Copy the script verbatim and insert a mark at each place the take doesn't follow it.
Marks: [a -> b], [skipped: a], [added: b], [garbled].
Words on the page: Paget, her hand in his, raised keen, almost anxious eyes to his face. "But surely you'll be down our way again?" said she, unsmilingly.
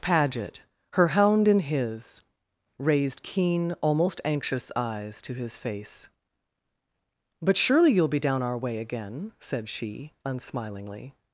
Paget, her [hand -> hound] in his, raised keen, almost anxious eyes to his face. "But surely you'll be down our way again?" said she, unsmilingly.